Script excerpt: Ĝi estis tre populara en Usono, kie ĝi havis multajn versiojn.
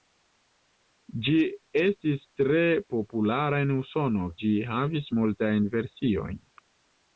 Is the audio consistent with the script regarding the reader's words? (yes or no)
no